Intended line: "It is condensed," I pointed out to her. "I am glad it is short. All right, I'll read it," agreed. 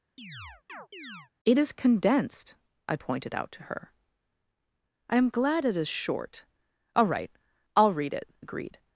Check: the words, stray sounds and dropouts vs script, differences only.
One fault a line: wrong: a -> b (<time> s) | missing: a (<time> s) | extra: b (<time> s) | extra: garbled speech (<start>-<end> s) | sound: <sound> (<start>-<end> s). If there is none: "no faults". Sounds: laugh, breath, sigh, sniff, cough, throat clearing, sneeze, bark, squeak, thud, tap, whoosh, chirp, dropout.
sound: chirp (0.2-1.3 s)